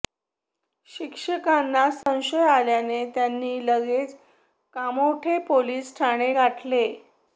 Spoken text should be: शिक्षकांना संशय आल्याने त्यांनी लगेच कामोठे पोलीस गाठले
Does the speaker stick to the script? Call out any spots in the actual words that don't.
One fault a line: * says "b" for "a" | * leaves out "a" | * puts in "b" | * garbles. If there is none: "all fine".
* puts in "ठाणे"